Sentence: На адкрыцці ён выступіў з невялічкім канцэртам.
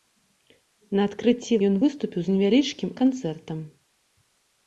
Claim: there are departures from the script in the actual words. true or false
false